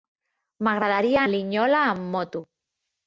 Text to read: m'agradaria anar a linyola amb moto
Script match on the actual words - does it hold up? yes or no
no